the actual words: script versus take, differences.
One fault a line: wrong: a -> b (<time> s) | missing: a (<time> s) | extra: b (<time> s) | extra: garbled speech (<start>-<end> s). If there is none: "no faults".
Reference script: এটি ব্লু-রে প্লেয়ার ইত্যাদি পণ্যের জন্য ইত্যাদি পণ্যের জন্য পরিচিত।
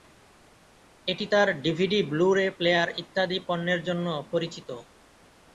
extra: তার ডিভিডি (1.3 s)
missing: ইত্যাদি পণ্যের জন্য (4.1 s)